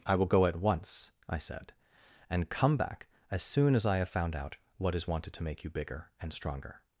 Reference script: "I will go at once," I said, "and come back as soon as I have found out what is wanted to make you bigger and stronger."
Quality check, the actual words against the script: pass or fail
pass